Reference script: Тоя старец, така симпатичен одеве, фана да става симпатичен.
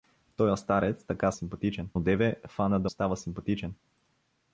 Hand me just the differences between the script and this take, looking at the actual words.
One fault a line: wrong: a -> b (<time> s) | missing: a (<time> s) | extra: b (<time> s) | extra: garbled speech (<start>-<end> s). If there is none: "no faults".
no faults